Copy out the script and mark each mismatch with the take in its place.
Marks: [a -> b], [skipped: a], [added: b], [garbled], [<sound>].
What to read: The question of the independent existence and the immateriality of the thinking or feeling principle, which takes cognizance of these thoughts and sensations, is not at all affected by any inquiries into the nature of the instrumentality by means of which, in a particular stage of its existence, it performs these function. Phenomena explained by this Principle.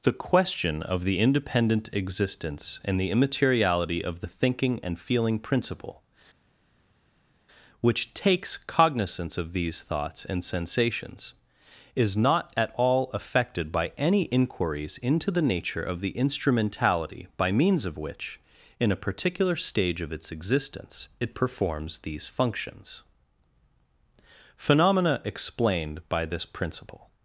The question of the independent existence and the immateriality of the thinking [or -> and] feeling principle, which takes cognizance of these thoughts and sensations, is not at all affected by any inquiries into the nature of the instrumentality by means of which, in a particular stage of its existence, it performs these [function. -> functions] Phenomena explained by this Principle.